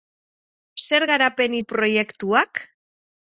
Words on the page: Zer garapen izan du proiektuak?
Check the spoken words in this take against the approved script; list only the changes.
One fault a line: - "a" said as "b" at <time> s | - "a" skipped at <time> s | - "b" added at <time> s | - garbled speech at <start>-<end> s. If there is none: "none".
- "izan" skipped at 1.6 s